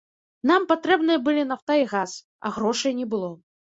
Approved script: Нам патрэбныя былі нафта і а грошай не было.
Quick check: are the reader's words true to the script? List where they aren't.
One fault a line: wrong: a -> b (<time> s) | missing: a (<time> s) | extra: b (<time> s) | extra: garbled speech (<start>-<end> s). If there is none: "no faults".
extra: газ (1.9 s)